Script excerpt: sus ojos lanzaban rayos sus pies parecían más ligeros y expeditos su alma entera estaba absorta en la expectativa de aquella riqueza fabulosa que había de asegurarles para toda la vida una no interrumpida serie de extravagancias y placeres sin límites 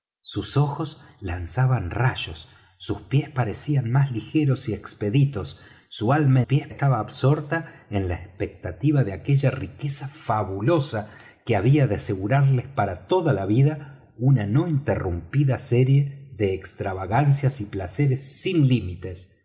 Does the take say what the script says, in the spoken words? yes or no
no